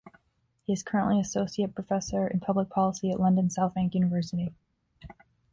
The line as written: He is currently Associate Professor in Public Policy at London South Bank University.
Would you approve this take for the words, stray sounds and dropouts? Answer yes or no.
yes